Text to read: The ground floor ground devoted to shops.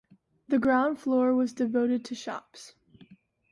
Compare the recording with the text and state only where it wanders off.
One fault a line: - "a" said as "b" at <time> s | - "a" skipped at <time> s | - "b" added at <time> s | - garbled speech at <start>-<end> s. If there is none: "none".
- "ground" said as "was" at 1.4 s